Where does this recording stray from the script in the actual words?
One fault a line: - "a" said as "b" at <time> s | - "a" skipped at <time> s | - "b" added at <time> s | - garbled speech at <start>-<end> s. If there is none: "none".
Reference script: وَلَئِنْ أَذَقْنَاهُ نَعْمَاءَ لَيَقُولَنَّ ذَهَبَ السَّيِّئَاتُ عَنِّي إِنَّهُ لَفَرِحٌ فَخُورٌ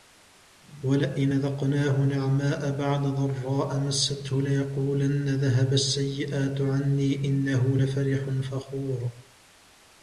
- "بَعْدَ ضَرَّاءَ مَسَّتْهُ" added at 2.8 s